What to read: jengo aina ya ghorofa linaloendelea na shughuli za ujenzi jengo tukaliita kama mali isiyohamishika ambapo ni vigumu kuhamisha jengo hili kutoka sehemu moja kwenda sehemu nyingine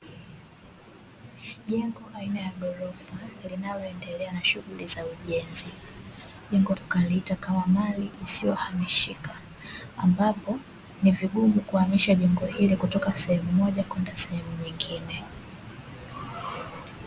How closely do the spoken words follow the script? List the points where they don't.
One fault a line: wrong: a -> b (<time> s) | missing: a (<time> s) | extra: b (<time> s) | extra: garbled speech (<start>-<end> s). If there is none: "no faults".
no faults